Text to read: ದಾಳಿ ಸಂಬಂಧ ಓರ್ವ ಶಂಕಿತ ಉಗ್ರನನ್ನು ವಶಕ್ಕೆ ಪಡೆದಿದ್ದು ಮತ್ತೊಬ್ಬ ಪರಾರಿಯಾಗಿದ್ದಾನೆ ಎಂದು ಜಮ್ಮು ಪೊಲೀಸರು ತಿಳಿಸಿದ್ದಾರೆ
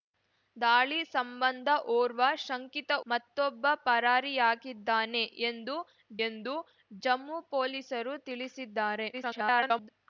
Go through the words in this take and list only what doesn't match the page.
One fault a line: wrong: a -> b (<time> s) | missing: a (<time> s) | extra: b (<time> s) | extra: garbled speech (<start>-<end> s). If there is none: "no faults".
missing: ಉಗ್ರನನ್ನು ವಶಕ್ಕೆ ಪಡೆದಿದ್ದು (2.9 s)
extra: ಎಂದು (6.3 s)
extra: garbled speech (9.1-9.9 s)